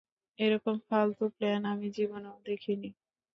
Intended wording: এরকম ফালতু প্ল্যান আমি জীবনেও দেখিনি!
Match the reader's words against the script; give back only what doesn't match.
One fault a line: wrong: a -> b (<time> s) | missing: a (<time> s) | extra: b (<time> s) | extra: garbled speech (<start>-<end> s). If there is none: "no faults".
no faults